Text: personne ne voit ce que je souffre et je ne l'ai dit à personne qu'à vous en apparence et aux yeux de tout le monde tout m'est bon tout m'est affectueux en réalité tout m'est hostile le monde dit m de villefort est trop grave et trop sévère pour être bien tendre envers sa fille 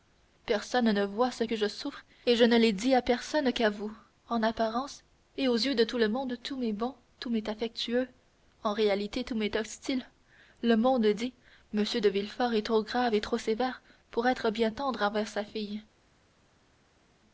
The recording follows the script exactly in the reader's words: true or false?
true